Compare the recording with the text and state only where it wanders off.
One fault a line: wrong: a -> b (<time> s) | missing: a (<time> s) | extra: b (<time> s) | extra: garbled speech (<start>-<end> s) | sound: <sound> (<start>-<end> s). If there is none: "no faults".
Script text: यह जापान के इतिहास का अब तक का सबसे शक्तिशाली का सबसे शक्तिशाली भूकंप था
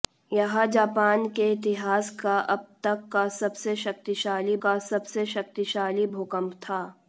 no faults